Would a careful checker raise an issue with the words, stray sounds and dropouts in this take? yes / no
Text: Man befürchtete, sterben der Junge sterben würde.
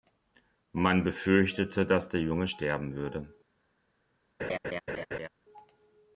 yes